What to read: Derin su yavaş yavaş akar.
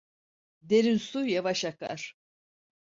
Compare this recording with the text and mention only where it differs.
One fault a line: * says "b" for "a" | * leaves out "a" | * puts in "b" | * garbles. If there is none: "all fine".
* leaves out "yavaş"